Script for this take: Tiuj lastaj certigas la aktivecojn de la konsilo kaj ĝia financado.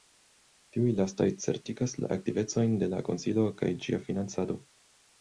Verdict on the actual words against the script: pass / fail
pass